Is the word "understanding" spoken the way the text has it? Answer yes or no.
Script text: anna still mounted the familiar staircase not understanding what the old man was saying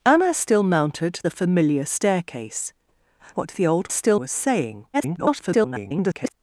no